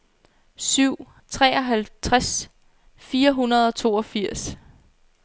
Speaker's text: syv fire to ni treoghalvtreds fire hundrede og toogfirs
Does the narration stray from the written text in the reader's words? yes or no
yes